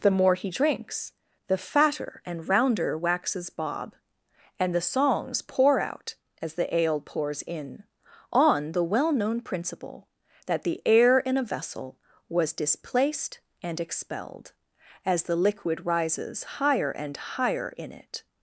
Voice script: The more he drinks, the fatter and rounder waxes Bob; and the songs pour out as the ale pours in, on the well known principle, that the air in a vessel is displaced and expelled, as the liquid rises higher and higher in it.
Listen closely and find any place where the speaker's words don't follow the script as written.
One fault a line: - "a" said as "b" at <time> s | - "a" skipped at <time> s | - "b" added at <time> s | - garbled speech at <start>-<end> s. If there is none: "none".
- "is" said as "was" at 12.3 s